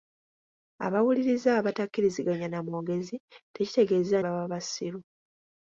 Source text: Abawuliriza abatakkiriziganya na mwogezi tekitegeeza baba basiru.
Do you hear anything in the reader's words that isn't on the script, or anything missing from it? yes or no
no